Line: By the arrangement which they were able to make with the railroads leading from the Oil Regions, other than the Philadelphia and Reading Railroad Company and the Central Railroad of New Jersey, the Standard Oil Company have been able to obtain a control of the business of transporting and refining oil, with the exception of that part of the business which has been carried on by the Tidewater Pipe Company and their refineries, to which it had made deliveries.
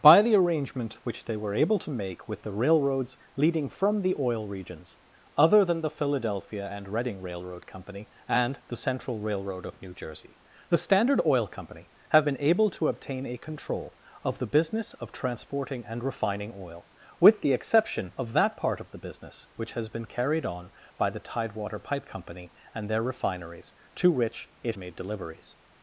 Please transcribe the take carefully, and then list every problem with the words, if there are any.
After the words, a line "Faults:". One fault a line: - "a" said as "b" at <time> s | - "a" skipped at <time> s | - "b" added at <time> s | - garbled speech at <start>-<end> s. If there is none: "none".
By the arrangement which they were able to make with the railroads leading from the Oil Regions, other than the Philadelphia and Reading Railroad Company and the Central Railroad of New Jersey, the Standard Oil Company have been able to obtain a control of the business of transporting and refining oil, with the exception of that part of the business which has been carried on by the Tidewater Pipe Company and their refineries, to which it made deliveries.
Faults:
- "had" skipped at 24.8 s